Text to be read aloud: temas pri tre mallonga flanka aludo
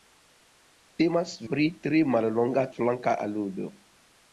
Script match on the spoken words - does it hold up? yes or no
yes